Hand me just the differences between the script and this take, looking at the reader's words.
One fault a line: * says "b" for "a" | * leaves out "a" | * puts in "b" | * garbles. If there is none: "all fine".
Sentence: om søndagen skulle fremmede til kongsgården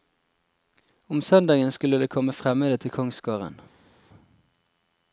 * puts in "det komme"